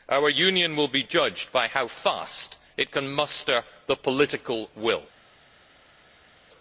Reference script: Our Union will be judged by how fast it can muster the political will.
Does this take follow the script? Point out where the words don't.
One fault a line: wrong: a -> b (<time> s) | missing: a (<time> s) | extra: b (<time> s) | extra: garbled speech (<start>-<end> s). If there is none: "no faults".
no faults